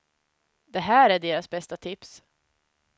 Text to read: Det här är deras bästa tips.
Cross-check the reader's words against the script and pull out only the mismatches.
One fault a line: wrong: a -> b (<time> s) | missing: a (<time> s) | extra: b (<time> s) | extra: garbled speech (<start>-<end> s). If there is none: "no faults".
no faults